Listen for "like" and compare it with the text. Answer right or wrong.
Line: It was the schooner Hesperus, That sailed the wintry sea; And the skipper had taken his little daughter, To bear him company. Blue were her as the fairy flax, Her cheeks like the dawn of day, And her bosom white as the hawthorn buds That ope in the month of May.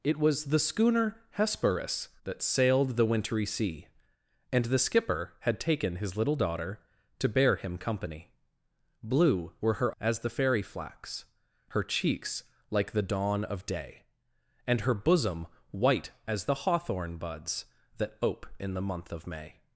right